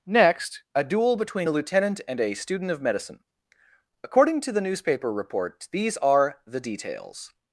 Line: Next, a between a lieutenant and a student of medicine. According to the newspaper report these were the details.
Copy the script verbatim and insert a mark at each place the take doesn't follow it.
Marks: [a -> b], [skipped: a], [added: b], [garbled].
Next, a [added: duel] between a lieutenant and a student of medicine. According to the newspaper report these [were -> are] the details.